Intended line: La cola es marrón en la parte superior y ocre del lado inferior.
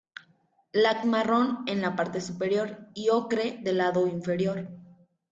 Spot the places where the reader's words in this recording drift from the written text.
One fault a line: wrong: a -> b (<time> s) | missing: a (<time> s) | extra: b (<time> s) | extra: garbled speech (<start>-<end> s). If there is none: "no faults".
missing: cola es (1.0 s)